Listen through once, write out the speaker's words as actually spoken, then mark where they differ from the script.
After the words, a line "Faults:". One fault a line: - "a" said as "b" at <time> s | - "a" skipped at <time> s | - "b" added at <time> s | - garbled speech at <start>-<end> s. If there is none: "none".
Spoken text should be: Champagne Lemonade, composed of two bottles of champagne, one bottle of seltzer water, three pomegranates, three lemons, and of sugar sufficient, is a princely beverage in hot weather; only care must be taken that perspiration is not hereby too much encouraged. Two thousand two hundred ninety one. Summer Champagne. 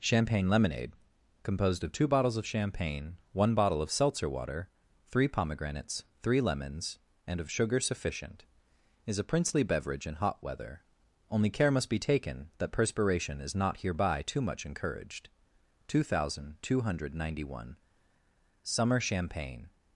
Champagne Lemonade, composed of two bottles of champagne, one bottle of seltzer water, three pomegranates, three lemons, and of sugar sufficient, is a princely beverage in hot weather; only care must be taken that perspiration is not hereby too much encouraged. Two thousand two hundred ninety one. Summer Champagne.
Faults:
none